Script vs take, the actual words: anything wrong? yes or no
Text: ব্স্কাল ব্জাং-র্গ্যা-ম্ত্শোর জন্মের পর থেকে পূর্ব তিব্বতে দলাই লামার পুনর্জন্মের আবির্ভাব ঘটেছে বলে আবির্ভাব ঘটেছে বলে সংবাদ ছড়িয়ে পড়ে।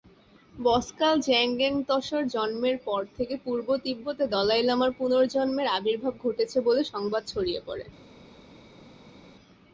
yes